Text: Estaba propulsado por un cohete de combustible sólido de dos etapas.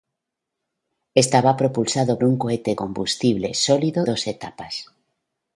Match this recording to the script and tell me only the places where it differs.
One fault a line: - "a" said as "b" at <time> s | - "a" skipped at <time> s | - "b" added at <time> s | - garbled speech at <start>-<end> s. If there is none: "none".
- "por" skipped at 2.2 s
- "de" skipped at 2.7 s
- "de" skipped at 4.1 s